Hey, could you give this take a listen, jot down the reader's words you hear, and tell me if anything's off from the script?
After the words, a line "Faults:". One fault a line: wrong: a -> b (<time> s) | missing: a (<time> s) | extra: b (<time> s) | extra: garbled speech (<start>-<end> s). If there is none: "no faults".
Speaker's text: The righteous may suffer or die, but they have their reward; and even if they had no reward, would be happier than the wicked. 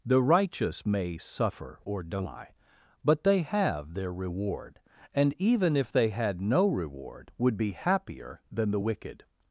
The righteous may suffer or die, but they have their reward; and even if they had no reward, would be happier than the wicked.
Faults:
no faults